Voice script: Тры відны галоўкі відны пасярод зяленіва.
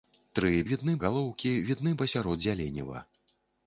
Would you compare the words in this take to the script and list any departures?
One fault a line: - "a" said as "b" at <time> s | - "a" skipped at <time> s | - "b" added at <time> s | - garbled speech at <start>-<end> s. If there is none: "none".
none